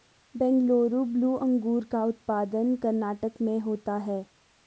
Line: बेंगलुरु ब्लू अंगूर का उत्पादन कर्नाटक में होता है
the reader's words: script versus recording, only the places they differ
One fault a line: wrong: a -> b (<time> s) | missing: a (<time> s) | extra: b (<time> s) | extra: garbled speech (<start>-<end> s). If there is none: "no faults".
no faults